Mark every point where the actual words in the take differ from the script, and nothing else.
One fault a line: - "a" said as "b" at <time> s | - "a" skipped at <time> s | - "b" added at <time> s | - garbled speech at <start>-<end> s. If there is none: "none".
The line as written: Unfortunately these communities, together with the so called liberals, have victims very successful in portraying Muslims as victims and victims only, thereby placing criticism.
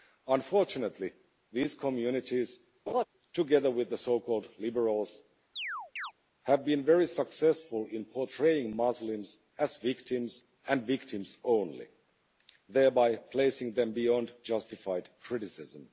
- "victims" said as "been" at 6.7 s
- "them beyond justified" added at 13.7 s